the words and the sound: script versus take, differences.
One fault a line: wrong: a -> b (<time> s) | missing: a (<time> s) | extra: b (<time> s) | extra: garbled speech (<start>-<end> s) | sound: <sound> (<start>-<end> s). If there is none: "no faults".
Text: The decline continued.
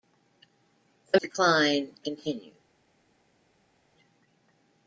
no faults